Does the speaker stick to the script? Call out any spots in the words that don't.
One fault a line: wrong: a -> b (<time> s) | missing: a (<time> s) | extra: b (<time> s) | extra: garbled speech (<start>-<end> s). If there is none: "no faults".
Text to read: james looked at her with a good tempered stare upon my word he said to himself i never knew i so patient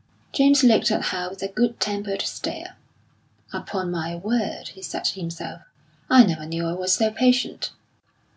extra: was (6.7 s)